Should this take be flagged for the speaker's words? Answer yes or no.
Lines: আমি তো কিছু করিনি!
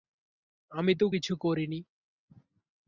no